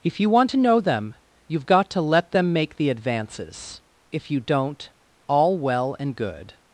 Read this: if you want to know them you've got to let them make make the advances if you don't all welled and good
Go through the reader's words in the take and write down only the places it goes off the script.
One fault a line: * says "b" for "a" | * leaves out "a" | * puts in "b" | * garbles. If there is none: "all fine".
* leaves out "make"
* says "well" for "welled"